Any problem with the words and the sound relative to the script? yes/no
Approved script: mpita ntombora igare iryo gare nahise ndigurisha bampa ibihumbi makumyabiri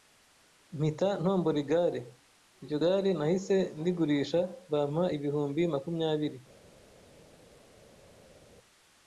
no